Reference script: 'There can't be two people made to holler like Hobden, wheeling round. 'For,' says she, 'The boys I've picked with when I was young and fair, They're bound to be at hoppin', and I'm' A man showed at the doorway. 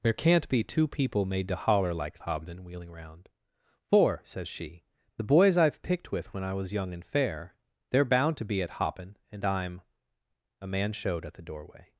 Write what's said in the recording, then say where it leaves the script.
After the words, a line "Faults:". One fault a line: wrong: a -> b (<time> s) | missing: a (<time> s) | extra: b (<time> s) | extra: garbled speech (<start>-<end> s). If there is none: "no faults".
'There can't be two people made to holler like Hobden, wheeling round. 'For,' says she, 'The boys I've picked with when I was young and fair, They're bound to be at hoppin', and I'm' A man showed at the doorway.
Faults:
no faults